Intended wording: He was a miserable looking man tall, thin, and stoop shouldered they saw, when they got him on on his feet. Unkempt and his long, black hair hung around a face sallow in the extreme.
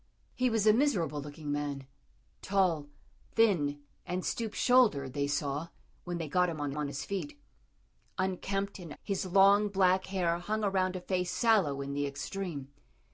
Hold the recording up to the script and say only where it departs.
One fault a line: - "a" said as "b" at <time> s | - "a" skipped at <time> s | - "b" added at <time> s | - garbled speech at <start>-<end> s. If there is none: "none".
none